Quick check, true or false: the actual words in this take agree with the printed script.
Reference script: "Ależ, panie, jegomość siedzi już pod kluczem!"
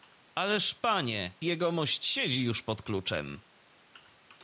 true